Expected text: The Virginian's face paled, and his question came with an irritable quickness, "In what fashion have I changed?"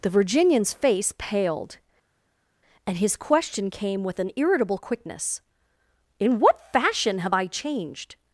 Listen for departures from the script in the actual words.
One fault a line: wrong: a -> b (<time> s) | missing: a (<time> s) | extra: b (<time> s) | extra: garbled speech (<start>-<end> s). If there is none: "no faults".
no faults